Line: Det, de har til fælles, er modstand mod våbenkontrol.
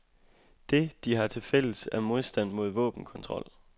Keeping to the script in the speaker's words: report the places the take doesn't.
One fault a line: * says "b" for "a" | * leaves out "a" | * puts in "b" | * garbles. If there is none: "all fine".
all fine